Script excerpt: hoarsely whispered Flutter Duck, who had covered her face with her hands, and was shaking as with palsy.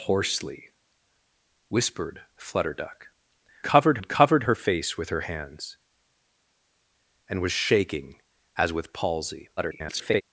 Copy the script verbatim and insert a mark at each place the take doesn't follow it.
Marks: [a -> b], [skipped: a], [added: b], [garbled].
hoarsely whispered Flutter Duck, [who -> covered] had covered her face with her hands, and was shaking as with palsy. [garbled]